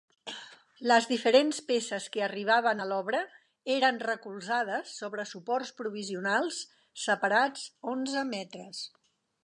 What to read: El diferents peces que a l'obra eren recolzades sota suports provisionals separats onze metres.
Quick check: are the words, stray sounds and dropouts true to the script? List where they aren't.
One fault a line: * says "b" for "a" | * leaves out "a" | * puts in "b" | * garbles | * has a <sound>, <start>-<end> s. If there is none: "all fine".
* says "Les" for "El"
* puts in "arribaven"
* says "sobre" for "sota"